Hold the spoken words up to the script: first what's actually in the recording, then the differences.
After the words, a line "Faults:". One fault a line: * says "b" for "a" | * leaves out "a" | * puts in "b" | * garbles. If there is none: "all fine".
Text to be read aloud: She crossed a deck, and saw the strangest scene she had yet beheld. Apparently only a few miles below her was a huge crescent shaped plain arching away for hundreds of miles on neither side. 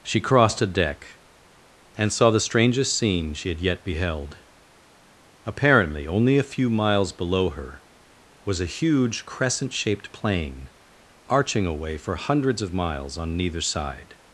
She crossed a deck, and saw the strangest scene she had yet beheld. Apparently only a few miles below her was a huge crescent shaped plain arching away for hundreds of miles on neither side.
Faults:
all fine